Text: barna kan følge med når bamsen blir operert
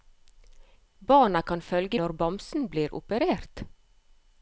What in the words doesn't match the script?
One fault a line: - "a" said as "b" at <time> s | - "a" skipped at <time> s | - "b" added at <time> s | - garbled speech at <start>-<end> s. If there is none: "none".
- "med" skipped at 2.0 s